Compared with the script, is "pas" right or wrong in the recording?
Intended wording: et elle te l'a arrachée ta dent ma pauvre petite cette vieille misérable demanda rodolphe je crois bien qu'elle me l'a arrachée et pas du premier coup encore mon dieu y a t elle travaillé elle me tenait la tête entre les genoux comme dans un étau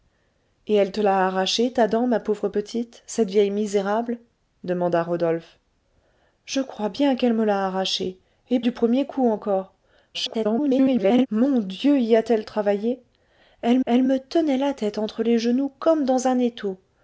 wrong